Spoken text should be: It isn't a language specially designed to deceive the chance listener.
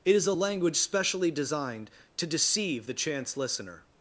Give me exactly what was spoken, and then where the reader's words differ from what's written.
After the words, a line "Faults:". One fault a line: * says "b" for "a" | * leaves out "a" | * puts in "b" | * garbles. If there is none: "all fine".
It is a language specially designed to deceive the chance listener.
Faults:
* says "is" for "isn't"